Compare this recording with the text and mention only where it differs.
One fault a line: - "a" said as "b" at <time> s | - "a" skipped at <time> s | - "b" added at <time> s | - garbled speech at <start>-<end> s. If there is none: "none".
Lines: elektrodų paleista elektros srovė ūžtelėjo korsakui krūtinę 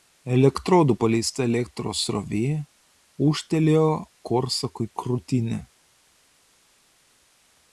none